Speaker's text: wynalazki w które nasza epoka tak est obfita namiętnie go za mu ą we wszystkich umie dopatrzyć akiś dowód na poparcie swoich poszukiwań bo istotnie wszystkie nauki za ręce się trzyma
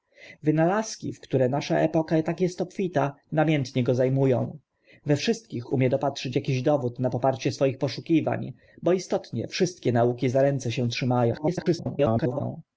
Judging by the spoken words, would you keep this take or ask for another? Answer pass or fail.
fail